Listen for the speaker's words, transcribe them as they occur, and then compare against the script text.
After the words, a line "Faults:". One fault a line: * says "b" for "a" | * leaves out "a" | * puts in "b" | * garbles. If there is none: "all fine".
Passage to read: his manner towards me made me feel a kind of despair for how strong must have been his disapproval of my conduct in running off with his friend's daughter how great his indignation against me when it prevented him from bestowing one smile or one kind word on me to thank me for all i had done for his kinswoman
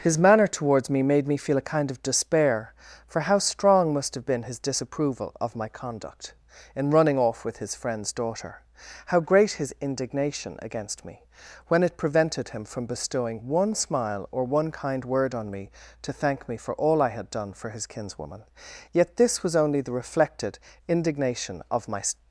his manner towards me made me feel a kind of despair for how strong must have been his disapproval of my conduct in running off with his friend's daughter how great his indignation against me when it prevented him from bestowing one smile or one kind word on me to thank me for all i had done for his kinswoman yet this was only the reflected indignation of my
Faults:
* puts in "yet this was only the reflected indignation of my"